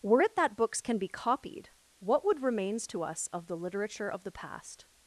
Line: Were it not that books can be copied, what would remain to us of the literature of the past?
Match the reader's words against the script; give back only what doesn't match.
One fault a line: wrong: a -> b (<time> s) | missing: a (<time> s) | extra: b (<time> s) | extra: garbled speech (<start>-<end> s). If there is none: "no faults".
missing: not (0.4 s)
wrong: remain -> remains (2.4 s)